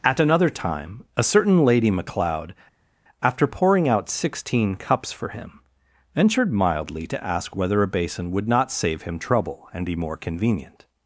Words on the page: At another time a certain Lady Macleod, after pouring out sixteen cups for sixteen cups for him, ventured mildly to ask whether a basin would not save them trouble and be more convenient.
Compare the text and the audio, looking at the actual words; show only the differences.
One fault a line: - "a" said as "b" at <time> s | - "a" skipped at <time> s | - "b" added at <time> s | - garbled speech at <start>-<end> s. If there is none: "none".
- "sixteen cups for" skipped at 5.3 s
- "them" said as "him" at 9.0 s